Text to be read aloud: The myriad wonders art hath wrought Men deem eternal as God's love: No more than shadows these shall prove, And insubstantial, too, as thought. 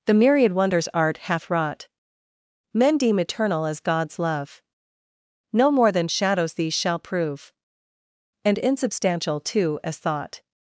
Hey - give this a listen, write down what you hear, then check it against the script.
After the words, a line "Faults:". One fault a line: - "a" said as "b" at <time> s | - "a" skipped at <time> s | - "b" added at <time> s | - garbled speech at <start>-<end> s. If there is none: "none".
The myriad wonders art hath wrought Men deem eternal as God's love: No more than shadows these shall prove, And insubstantial, too, as thought.
Faults:
none